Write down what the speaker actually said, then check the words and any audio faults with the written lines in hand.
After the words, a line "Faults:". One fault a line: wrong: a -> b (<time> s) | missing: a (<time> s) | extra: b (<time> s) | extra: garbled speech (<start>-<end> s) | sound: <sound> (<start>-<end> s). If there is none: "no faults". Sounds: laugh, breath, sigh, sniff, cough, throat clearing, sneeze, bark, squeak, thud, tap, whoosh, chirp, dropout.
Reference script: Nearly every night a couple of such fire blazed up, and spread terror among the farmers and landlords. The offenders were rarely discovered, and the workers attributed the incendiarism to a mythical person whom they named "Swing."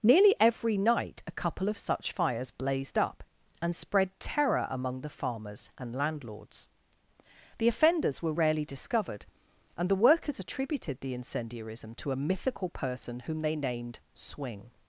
Nearly every night a couple of such fires blazed up, and spread terror among the farmers and landlords. The offenders were rarely discovered, and the workers attributed the incendiarism to a mythical person whom they named "Swing."
Faults:
wrong: fire -> fires (2.1 s)